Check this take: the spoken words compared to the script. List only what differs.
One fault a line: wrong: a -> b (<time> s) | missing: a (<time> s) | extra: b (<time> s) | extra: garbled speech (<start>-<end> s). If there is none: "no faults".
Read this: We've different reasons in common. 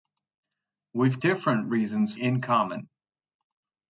no faults